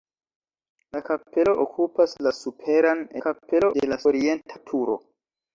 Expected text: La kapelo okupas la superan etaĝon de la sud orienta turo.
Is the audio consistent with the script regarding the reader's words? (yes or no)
no